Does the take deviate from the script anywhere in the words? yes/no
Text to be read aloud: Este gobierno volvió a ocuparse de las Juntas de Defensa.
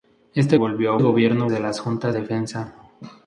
yes